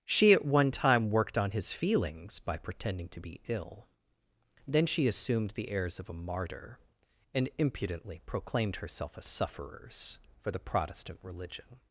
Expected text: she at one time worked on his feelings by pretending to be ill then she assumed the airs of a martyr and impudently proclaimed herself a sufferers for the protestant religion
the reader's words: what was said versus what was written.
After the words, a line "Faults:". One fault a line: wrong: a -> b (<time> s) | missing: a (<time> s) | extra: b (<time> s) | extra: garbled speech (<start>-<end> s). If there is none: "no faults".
she at one time worked on his feelings by pretending to be ill then she assumed the airs of a martyr and impudently proclaimed herself a sufferers for the protestant religion
Faults:
no faults